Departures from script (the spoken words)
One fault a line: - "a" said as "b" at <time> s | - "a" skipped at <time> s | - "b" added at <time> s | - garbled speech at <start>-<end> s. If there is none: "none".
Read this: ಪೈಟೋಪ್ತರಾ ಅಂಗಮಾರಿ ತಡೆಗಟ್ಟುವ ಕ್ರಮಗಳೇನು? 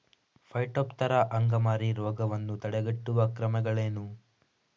- "ರೋಗವನ್ನು" added at 1.9 s